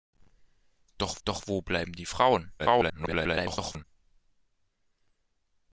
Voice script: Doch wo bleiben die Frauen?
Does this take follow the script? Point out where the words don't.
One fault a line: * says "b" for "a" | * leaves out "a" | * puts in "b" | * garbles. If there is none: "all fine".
* puts in "doch"
* garbles